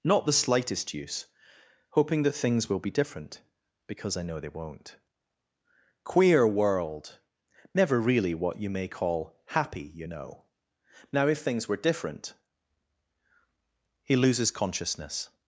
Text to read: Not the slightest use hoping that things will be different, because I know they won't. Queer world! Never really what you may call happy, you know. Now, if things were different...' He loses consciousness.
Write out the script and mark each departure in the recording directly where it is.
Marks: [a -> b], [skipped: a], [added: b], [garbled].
Not the slightest use hoping that things will be different, because I know they won't. Queer world! Never really what you may call happy, you know. Now, if things were different...' He loses consciousness.